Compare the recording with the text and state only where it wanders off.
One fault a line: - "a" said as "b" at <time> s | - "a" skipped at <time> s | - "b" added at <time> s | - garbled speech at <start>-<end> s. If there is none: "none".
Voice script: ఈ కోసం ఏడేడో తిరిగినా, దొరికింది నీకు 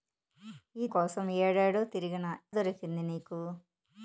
none